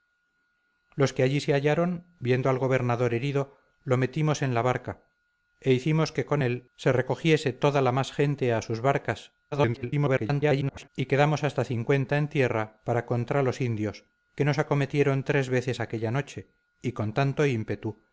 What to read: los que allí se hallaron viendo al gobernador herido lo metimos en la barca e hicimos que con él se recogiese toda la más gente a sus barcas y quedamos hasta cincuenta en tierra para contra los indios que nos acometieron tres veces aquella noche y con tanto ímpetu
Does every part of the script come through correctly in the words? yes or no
no